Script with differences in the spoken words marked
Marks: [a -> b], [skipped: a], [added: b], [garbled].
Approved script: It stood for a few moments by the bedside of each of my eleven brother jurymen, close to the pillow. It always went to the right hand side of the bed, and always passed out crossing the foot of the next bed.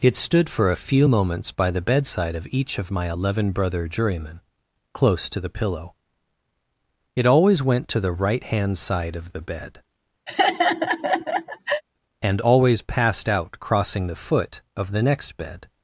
It stood for a few moments by the bedside of each of my eleven brother jurymen, close to the pillow. It always went to the right hand side of the bed, and always passed out crossing the foot of the next bed.